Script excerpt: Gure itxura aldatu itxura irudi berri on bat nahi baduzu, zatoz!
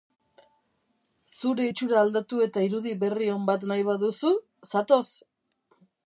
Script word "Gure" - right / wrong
wrong